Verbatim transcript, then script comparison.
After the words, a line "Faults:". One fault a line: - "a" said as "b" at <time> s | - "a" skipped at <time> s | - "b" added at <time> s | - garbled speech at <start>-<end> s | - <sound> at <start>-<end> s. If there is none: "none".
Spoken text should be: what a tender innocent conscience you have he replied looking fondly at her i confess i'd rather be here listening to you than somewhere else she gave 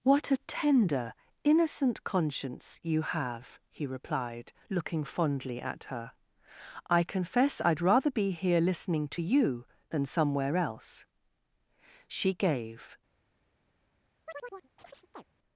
what a tender innocent conscience you have he replied looking fondly at her i confess i'd rather be here listening to you than somewhere else she gave
Faults:
- chirp at 14.3-15.2 s